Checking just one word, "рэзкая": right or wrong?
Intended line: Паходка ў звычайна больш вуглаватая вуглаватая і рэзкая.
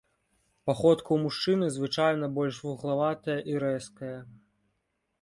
right